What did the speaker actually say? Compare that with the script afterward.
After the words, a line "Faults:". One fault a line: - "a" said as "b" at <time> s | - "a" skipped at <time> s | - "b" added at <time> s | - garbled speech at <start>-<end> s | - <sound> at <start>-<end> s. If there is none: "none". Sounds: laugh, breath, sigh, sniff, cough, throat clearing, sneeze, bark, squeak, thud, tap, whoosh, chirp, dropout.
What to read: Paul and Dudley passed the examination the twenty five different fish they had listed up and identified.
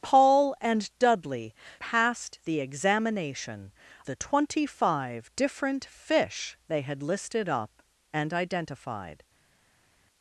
Paul and Dudley passed the examination the twenty five different fish they had listed up and identified.
Faults:
none